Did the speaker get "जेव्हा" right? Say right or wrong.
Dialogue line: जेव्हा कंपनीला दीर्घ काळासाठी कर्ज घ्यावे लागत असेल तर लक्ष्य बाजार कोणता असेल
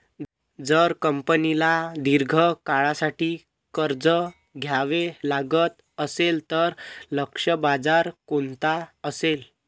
wrong